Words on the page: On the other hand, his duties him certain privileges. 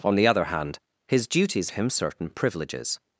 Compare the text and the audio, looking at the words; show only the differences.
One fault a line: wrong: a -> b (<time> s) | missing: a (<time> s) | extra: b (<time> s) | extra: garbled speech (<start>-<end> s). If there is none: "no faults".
no faults